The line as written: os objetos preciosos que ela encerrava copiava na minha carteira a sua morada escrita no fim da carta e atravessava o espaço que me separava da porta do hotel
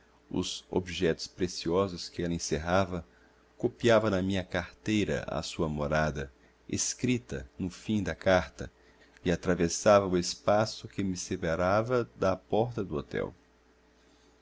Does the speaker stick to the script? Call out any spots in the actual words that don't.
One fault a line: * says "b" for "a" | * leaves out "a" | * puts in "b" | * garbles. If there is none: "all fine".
all fine